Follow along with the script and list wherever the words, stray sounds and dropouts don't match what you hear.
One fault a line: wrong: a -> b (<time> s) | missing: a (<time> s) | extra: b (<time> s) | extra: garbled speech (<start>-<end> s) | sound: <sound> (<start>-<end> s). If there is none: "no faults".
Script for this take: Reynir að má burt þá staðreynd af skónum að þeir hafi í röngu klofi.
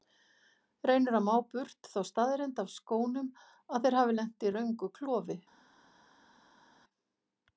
extra: lent (4.2 s)